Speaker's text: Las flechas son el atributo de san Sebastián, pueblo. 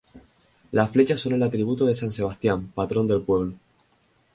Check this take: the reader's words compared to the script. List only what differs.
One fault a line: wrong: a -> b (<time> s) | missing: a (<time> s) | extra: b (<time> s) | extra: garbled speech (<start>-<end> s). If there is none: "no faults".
extra: patrón del (2.7 s)